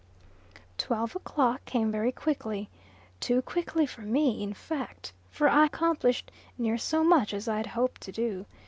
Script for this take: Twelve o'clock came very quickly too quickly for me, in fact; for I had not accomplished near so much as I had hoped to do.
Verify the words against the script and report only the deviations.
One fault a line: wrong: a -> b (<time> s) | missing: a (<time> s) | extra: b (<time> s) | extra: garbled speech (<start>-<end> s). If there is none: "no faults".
missing: had not (5.6 s)